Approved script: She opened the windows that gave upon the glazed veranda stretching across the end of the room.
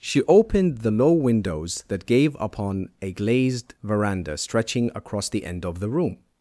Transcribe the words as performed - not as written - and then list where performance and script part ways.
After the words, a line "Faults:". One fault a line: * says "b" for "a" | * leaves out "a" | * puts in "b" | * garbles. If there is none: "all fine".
She opened the low windows that gave upon a glazed veranda stretching across the end of the room.
Faults:
* puts in "low"
* says "a" for "the"